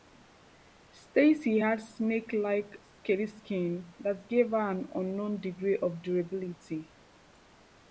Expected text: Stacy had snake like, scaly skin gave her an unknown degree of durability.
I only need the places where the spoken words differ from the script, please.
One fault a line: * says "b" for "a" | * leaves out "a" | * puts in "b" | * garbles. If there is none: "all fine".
* puts in "that"